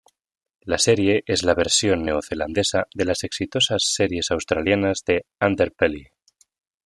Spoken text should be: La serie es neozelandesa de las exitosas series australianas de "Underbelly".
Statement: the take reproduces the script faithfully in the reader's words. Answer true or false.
false